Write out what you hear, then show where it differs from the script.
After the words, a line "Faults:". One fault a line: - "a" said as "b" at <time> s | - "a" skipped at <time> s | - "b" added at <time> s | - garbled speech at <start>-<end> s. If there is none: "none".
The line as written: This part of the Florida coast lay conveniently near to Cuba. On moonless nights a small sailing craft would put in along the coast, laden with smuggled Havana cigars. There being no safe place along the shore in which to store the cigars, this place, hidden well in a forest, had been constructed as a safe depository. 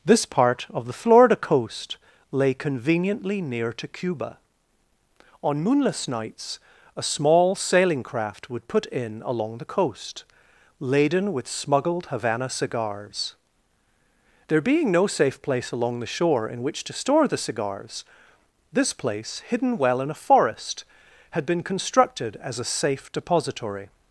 This part of the Florida coast lay conveniently near to Cuba. On moonless nights a small sailing craft would put in along the coast, laden with smuggled Havana cigars. There being no safe place along the shore in which to store the cigars, this place, hidden well in a forest, had been constructed as a safe depository.
Faults:
none